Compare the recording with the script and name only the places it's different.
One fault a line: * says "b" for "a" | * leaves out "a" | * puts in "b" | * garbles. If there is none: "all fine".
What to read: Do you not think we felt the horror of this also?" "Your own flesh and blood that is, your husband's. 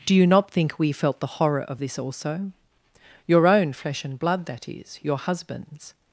all fine